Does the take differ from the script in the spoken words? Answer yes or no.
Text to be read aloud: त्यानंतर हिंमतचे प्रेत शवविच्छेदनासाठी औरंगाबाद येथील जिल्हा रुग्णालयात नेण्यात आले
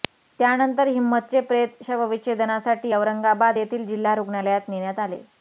no